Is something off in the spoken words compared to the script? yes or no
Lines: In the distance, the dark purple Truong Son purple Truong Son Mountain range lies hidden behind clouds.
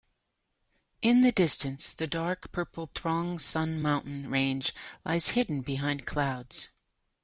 yes